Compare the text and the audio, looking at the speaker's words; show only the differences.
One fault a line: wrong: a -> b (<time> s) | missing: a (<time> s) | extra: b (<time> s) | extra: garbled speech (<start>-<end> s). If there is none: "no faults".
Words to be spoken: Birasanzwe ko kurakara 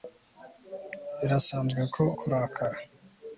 no faults